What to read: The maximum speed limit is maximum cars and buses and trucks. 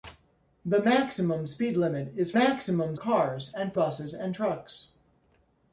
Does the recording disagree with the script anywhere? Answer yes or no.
no